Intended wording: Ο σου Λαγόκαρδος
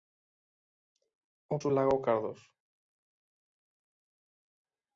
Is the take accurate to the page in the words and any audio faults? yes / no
yes